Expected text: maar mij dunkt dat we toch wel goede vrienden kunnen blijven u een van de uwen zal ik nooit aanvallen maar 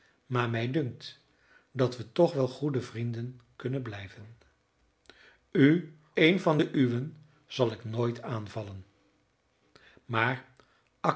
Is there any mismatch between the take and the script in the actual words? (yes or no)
no